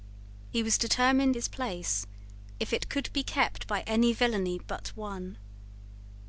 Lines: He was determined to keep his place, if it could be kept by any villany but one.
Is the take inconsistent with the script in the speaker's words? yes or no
yes